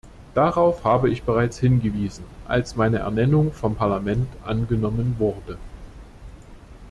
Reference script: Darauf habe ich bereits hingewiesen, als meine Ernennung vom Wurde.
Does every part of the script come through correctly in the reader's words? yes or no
no